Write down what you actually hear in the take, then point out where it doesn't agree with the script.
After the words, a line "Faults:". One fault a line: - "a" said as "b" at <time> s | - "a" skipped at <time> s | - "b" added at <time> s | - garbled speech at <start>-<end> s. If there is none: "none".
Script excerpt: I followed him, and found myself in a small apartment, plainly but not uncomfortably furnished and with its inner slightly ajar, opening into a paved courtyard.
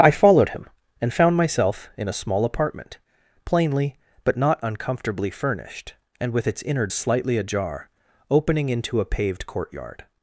I followed him, and found myself in a small apartment, plainly but not uncomfortably furnished and with its inner slightly ajar, opening into a paved courtyard.
Faults:
none